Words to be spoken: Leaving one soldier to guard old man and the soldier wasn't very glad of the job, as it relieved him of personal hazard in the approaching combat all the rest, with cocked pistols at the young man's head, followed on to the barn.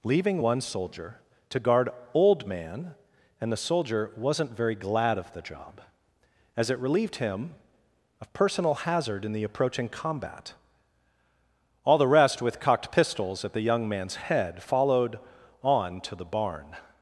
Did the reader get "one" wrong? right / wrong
right